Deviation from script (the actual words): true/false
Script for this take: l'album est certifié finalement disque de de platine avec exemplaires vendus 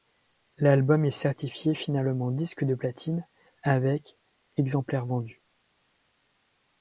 true